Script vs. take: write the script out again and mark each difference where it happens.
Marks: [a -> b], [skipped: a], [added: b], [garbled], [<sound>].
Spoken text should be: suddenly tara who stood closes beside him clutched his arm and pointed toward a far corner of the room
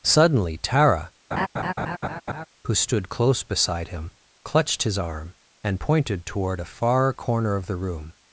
suddenly tara [laugh] who stood [closes -> close] beside him clutched his arm and pointed toward a far corner of the room